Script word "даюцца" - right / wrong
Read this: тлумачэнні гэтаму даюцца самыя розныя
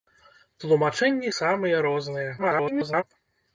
wrong